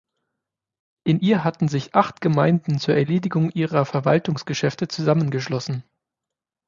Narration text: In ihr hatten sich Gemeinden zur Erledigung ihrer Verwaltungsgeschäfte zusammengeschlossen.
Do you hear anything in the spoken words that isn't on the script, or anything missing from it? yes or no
yes